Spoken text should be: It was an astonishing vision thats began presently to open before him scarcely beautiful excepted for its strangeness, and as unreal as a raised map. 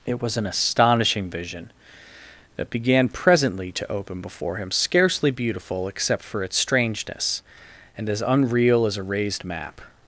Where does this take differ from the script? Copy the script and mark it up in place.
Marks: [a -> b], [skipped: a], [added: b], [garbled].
It was an astonishing vision [thats -> that] began presently to open before him scarcely beautiful [excepted -> except] for its strangeness, and as unreal as a raised map.